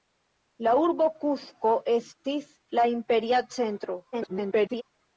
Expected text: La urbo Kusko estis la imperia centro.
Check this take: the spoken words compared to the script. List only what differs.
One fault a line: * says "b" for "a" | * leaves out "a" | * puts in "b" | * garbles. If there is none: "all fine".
* garbles